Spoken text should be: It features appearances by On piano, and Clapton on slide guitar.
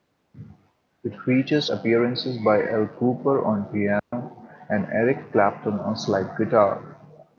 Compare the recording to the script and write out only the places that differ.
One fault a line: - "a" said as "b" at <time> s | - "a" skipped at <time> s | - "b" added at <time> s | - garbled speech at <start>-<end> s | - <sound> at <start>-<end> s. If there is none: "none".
- "Al Kooper" added at 2.6 s
- dropout at 4.0-4.1 s
- "Eric" added at 4.8 s